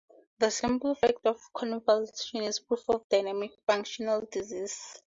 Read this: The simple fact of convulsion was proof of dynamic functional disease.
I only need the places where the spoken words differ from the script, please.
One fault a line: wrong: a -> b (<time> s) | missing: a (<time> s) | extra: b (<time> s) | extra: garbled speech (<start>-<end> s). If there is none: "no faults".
wrong: was -> is (2.4 s)